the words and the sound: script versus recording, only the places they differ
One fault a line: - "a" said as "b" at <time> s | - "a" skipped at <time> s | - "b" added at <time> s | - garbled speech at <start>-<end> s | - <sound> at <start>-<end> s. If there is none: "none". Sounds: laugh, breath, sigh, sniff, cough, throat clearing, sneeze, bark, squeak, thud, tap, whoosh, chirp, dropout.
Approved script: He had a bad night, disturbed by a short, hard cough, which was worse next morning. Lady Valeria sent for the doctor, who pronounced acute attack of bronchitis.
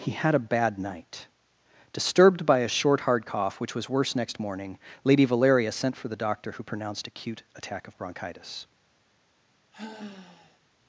- sigh at 9.7-10.6 s